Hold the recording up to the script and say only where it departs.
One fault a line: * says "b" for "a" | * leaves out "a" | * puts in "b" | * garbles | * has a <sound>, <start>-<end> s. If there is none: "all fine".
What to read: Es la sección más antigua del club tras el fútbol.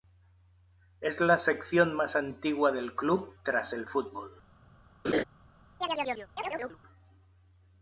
* has a laugh, 5.0-5.2 s
* has a chirp, 5.8-6.8 s